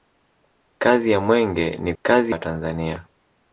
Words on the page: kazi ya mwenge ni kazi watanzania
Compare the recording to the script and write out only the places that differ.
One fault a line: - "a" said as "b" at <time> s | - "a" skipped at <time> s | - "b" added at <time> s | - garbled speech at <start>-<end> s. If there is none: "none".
none